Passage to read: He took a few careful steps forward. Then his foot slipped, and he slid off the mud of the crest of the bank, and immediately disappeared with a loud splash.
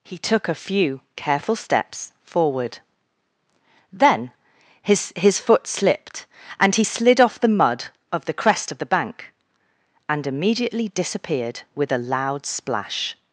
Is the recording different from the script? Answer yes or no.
yes